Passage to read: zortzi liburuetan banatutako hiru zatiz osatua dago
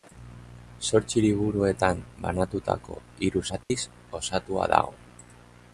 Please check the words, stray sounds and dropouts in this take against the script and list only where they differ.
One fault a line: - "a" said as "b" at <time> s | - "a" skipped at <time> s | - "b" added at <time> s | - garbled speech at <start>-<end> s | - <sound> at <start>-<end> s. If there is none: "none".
- dropout at 3.6-3.7 s